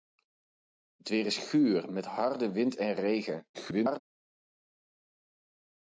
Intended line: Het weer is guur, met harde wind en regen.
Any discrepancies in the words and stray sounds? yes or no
yes